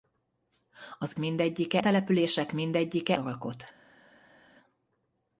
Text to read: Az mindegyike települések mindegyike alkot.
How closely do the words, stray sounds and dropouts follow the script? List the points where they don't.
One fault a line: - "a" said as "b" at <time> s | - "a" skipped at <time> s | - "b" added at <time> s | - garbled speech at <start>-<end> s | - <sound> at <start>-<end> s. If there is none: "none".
none